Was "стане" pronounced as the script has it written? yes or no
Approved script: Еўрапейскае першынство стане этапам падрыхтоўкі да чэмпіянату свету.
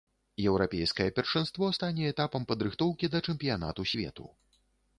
yes